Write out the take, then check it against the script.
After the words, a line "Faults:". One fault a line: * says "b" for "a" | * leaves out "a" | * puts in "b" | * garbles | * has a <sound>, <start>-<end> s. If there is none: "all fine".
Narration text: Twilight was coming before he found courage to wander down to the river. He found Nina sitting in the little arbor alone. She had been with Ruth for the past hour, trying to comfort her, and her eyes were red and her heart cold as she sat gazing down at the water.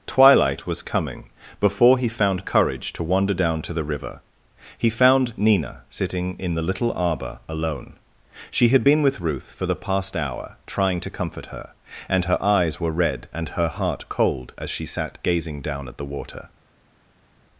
Twilight was coming before he found courage to wander down to the river. He found Nina sitting in the little arbor alone. She had been with Ruth for the past hour, trying to comfort her, and her eyes were red and her heart cold as she sat gazing down at the water.
Faults:
all fine